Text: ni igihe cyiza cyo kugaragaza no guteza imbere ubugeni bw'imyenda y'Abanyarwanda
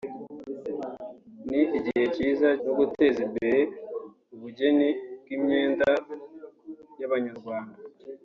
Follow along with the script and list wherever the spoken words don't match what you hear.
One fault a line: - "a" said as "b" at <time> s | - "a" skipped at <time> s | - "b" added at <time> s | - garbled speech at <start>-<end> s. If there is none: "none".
- "cyo kugaragaza" skipped at 2.5 s